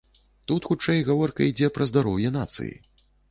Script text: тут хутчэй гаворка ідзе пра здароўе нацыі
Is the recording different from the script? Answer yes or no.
no